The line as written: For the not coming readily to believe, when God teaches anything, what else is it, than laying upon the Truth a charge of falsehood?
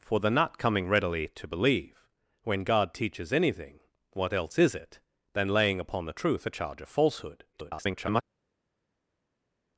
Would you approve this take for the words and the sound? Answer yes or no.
no